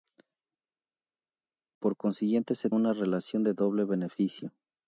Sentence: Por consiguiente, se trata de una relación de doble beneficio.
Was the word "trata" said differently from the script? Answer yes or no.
yes